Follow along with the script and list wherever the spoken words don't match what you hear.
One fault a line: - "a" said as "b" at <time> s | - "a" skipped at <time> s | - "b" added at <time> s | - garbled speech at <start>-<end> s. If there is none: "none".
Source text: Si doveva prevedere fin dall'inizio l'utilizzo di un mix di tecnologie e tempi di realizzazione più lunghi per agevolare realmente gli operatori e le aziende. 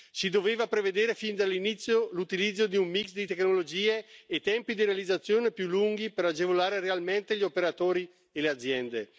none